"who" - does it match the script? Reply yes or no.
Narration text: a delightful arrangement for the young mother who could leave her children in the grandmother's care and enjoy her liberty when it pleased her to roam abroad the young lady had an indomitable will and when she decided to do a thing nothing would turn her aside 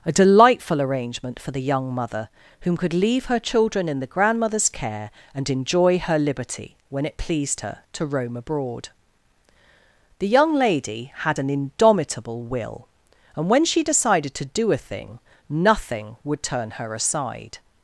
no